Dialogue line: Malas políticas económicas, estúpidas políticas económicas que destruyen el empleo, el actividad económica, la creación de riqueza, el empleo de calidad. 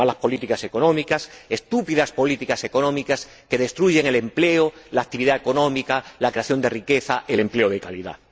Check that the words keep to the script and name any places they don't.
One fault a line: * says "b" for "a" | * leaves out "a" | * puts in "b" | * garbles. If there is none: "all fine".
* says "la" for "el"